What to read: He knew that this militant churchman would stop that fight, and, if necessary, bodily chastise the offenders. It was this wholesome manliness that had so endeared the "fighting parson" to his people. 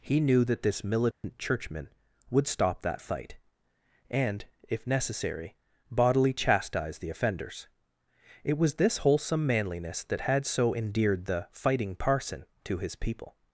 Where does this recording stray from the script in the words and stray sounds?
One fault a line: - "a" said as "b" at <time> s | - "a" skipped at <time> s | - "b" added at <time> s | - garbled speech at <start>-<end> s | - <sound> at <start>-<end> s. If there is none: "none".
- dropout at 1.1-1.2 s